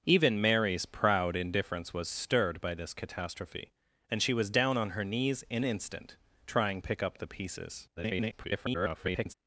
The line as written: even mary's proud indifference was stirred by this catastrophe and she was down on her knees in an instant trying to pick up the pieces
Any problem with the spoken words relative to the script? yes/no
yes